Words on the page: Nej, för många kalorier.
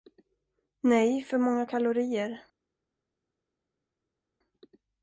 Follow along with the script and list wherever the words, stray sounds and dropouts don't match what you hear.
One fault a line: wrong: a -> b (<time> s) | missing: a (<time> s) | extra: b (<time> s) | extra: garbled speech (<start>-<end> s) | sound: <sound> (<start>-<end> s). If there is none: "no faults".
no faults